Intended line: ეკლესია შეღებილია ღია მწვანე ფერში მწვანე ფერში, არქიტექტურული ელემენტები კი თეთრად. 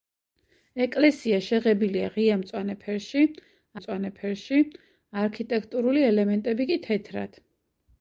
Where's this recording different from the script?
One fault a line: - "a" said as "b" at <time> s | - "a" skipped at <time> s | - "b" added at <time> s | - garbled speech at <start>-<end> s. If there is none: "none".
none